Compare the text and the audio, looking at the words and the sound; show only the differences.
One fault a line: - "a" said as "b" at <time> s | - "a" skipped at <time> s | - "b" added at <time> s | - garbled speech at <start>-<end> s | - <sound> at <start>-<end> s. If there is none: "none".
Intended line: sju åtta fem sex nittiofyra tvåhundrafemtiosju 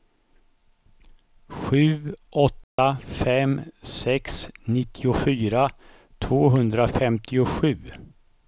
- dropout at 2.6-2.8 s